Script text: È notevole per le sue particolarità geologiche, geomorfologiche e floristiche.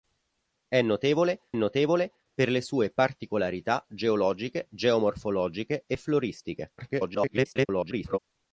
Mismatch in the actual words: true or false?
true